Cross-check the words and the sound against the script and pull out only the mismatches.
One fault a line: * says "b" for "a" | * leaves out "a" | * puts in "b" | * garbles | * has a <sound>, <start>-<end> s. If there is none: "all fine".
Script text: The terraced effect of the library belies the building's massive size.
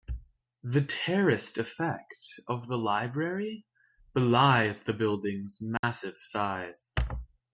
* has a dropout, 5.8-5.8 s